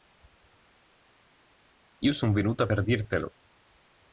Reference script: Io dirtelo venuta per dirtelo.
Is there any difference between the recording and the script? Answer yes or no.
yes